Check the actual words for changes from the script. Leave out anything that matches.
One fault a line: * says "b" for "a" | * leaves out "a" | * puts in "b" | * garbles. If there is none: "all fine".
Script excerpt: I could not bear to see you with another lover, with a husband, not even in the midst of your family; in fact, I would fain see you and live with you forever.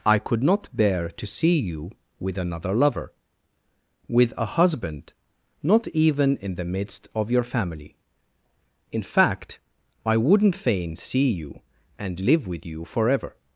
* says "wouldn't" for "would"